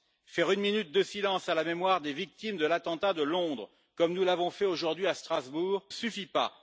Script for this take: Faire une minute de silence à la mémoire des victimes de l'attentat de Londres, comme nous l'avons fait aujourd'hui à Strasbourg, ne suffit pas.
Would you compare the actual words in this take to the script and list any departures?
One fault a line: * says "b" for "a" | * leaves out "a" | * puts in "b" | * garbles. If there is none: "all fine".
* leaves out "ne"